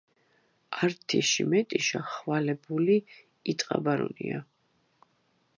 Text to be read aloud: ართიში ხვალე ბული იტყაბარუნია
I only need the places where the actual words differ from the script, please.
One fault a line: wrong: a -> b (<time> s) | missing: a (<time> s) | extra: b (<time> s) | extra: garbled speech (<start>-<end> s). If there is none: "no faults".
extra: მეტიშა (1.5 s)